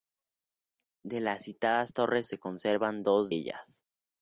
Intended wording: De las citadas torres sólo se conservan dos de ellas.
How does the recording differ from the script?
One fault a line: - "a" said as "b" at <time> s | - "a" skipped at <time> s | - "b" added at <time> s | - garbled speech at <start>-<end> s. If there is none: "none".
- "sólo" skipped at 2.2 s
- "de" skipped at 3.3 s